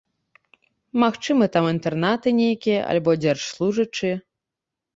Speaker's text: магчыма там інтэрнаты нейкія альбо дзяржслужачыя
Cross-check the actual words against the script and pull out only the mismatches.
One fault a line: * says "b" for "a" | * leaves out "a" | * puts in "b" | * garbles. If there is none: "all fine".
all fine